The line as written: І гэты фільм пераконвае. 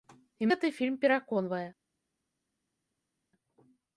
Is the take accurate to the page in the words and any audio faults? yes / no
yes